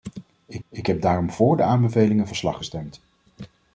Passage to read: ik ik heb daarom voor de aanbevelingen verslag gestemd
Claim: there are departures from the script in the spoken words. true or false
false